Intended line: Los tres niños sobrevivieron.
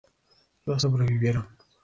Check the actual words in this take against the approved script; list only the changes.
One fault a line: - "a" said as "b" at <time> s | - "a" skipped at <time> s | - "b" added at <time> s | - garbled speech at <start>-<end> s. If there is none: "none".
- "tres niños" skipped at 0.8 s